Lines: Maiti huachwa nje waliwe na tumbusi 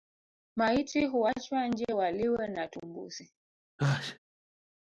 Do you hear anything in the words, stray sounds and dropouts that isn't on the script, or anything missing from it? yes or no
yes